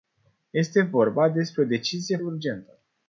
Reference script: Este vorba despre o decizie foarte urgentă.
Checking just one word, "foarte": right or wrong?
wrong